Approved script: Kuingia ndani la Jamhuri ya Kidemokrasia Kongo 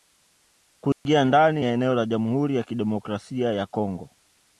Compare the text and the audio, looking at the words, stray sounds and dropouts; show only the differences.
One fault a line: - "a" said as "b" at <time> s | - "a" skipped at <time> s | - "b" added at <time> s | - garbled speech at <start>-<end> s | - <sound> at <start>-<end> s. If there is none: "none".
- dropout at 0.9-1.1 s
- "ya eneo" added at 1.6 s
- "ya" added at 3.5 s